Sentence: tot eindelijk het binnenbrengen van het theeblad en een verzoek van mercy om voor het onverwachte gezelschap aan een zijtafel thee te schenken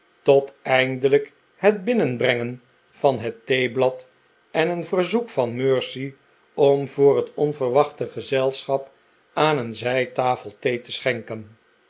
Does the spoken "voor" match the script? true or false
true